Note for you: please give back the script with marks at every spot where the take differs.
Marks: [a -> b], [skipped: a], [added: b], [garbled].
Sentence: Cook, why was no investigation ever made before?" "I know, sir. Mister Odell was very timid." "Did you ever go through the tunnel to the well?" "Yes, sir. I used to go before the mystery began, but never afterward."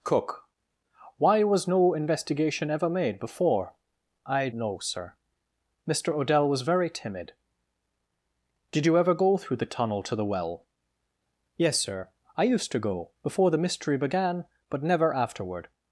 Cook, why was no investigation ever made before?" "I know, sir. Mister Odell was very timid." "Did you ever go through the tunnel to the well?" "Yes, sir. I used to go before the mystery began, but never afterward."